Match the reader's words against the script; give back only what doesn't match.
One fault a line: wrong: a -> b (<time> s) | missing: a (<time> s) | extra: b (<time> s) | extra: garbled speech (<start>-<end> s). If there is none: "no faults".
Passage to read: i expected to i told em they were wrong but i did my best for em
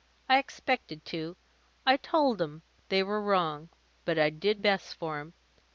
missing: my (4.6 s)